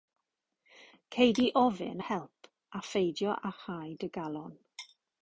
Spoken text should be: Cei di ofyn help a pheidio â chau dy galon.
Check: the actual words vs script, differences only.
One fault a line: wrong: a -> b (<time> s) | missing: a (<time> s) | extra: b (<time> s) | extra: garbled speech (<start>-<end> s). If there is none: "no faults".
no faults